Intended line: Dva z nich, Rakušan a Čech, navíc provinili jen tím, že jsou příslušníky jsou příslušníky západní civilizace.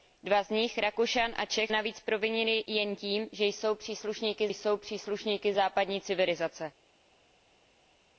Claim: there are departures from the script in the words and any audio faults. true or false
false